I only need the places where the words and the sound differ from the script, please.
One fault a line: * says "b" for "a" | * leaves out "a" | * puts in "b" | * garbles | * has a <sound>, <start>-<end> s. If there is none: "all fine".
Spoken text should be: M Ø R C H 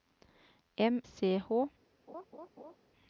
* leaves out "Ø R"
* has a laugh, 2.1-2.8 s